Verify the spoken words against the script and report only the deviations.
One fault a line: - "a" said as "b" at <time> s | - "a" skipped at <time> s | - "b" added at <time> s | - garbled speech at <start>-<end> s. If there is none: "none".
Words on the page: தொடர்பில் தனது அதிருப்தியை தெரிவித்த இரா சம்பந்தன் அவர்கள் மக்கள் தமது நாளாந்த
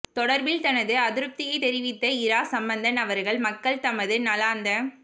none